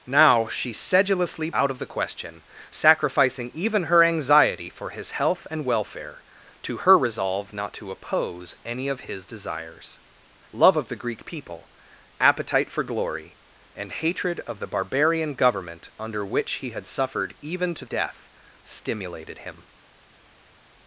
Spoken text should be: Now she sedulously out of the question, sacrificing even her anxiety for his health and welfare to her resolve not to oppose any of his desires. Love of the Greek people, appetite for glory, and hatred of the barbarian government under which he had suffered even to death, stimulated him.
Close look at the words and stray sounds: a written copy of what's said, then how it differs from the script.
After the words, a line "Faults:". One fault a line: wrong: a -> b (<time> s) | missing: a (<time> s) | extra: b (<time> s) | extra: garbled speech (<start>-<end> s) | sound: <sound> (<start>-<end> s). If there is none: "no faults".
Now she sedulously out of the question, sacrificing even her anxiety for his health and welfare to her resolve not to oppose any of his desires. Love of the Greek people, appetite for glory, and hatred of the barbarian government under which he had suffered even to death, stimulated him.
Faults:
no faults